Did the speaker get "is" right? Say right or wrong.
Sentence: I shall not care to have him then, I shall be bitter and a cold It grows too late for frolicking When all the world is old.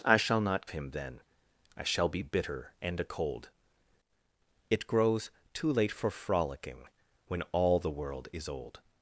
right